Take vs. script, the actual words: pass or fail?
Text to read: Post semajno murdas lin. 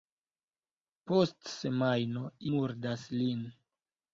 pass